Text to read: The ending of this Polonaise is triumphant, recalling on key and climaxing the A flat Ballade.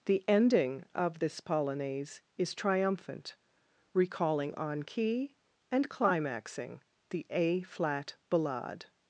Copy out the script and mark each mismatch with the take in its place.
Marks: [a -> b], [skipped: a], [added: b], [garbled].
The ending of this Polonaise is triumphant, recalling on key and climaxing the A flat Ballade.